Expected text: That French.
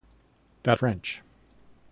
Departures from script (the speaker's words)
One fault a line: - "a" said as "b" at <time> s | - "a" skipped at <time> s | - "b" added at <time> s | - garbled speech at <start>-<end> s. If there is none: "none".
none